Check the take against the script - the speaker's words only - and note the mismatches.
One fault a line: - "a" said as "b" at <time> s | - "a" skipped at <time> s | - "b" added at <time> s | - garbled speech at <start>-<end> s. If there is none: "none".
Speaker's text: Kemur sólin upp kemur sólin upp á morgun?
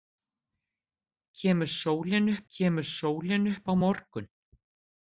none